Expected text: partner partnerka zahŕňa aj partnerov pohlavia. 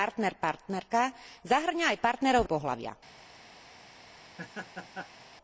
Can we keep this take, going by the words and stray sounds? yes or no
no